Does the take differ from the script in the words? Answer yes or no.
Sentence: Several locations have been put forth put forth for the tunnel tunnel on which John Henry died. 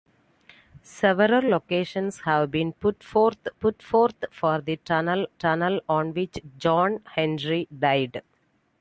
no